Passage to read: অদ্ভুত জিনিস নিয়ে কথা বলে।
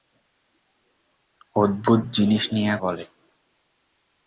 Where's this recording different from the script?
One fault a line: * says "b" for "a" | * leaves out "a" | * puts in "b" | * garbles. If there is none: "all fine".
* leaves out "কথা"